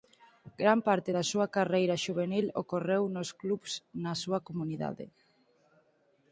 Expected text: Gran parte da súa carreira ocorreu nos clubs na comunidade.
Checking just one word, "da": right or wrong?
right